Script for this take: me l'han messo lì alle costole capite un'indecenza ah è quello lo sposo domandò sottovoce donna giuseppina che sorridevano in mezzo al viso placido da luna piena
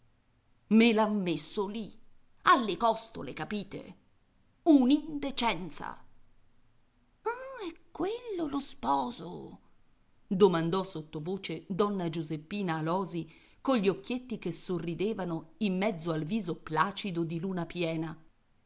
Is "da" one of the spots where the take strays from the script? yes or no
yes